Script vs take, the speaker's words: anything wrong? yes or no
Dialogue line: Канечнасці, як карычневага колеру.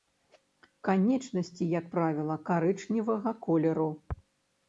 yes